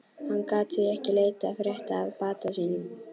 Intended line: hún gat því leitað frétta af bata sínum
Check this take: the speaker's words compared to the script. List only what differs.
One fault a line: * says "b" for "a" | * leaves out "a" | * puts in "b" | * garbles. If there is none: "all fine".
* says "hann" for "hún"
* puts in "ekki"